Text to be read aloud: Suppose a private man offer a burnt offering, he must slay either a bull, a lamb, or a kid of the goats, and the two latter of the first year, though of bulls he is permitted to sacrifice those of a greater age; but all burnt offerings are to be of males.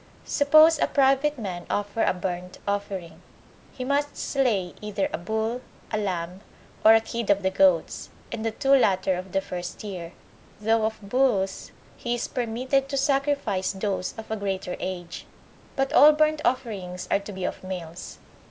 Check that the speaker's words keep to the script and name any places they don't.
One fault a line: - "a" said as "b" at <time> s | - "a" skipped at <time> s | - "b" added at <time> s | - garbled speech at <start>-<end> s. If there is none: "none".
none